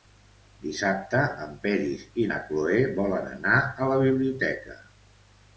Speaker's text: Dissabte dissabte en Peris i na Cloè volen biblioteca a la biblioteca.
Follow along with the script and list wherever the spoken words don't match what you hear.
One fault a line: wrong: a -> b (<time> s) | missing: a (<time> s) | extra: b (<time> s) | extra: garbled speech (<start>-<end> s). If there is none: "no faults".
missing: dissabte (1.2 s)
wrong: biblioteca -> anar (3.3 s)